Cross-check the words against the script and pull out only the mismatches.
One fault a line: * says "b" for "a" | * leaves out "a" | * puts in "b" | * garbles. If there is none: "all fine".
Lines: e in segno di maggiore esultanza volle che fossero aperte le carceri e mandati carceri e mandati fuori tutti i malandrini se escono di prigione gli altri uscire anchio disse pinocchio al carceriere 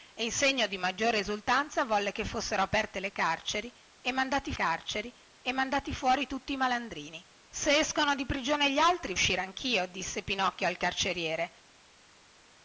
all fine